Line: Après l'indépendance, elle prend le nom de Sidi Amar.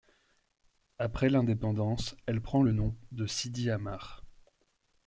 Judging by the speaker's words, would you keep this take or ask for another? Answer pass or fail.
pass